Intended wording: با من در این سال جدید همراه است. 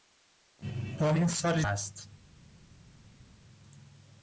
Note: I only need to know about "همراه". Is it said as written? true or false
false